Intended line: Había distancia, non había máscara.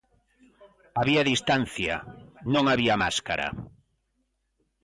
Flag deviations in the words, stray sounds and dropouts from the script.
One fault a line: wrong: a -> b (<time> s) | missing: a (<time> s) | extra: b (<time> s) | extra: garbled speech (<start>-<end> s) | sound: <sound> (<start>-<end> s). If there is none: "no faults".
no faults